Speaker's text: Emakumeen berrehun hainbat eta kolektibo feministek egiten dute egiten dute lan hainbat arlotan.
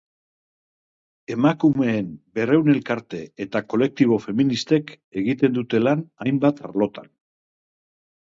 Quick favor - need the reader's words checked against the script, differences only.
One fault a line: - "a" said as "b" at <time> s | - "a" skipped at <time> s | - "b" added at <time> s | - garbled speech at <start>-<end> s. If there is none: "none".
- "hainbat" said as "elkarte" at 2.7 s
- "egiten dute" skipped at 5.8 s